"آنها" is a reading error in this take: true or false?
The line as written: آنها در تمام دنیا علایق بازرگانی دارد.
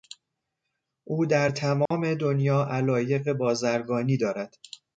true